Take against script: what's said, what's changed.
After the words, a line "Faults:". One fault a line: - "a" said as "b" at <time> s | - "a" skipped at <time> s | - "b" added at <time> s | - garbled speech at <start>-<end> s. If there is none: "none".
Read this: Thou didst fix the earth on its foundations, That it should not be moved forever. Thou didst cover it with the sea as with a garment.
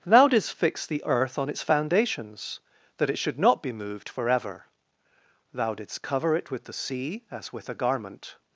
Thou didst fix the earth on its foundations, That it should not be moved forever. Thou didst cover it with the sea as with a garment.
Faults:
none